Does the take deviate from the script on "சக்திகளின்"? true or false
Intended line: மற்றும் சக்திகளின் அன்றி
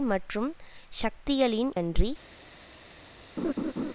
false